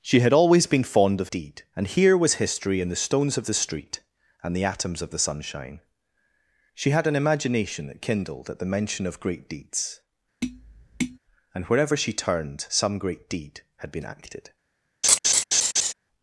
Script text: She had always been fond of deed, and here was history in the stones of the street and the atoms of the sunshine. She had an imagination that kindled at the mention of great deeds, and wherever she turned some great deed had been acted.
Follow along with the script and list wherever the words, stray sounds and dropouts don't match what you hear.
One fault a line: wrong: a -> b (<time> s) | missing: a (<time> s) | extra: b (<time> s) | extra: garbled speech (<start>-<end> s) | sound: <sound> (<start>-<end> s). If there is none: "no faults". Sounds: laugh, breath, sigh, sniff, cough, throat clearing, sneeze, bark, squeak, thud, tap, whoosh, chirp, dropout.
sound: tap (10.4-11.2 s)
sound: laugh (15.0-15.9 s)